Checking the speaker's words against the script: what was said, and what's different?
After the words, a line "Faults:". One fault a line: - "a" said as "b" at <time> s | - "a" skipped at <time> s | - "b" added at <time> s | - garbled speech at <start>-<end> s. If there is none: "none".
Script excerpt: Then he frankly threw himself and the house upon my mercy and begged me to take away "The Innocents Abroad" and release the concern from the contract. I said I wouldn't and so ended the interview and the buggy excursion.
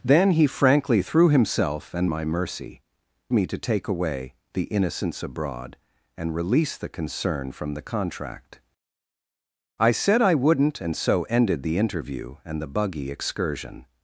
Then he frankly threw himself and my mercy me to take away "The Innocents Abroad" and release the concern from the contract. I said I wouldn't and so ended the interview and the buggy excursion.
Faults:
- "the house upon" skipped at 2.1 s
- "and begged" skipped at 2.8 s